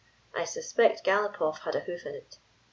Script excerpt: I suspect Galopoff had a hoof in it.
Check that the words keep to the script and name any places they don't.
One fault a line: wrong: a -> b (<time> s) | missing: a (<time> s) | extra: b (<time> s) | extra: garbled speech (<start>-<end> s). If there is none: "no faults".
no faults